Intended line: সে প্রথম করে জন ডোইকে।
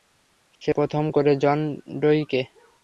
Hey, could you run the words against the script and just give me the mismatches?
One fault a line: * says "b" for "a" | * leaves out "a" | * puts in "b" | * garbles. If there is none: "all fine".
all fine